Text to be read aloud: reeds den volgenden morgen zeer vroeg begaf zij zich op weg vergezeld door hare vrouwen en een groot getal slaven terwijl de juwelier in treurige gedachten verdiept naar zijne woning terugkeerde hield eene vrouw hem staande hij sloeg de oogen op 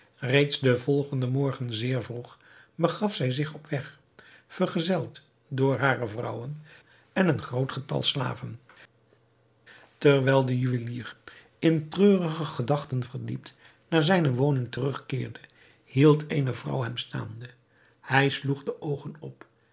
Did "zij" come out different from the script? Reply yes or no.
no